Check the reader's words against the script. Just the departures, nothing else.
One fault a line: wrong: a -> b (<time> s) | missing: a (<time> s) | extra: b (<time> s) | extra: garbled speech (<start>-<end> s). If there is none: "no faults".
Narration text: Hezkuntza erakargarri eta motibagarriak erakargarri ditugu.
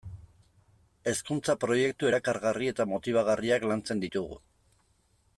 extra: proiektu (1.6 s)
wrong: erakargarri -> lantzen (3.7 s)